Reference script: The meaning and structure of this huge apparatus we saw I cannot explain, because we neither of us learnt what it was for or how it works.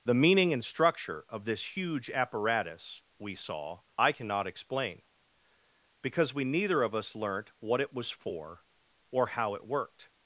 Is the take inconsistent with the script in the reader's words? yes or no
yes